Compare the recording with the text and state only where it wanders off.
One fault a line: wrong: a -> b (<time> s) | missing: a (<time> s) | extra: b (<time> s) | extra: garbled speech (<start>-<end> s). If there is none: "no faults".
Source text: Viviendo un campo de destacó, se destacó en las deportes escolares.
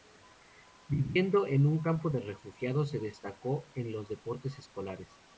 extra: en (1.4 s)
wrong: destacó -> refugiados (2.2 s)
wrong: las -> los (3.9 s)